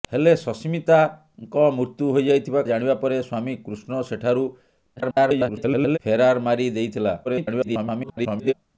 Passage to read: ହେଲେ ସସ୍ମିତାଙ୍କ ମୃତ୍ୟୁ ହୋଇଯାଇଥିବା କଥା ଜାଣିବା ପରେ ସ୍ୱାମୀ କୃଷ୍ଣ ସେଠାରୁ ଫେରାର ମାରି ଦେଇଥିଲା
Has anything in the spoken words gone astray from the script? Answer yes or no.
yes